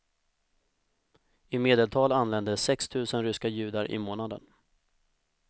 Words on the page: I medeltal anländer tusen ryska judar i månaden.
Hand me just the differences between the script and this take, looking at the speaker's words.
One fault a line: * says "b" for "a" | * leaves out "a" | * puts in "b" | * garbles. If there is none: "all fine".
* puts in "sex"